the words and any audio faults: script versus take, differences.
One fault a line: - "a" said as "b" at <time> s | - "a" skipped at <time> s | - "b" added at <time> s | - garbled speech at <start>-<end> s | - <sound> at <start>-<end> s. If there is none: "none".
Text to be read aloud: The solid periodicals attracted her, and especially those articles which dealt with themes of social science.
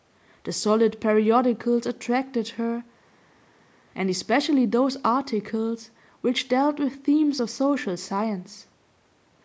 none